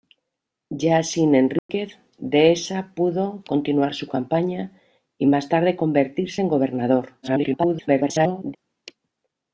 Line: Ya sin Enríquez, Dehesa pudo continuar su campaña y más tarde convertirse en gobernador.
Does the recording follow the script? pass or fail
fail